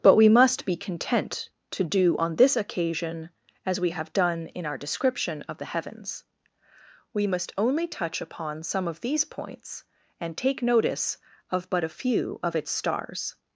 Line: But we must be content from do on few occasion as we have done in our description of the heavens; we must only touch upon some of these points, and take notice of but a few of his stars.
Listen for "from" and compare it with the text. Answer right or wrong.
wrong